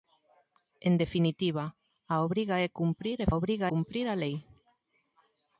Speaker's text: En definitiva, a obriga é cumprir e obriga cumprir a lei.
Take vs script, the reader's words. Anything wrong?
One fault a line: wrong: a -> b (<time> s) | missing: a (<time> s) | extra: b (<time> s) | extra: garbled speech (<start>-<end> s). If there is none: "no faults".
no faults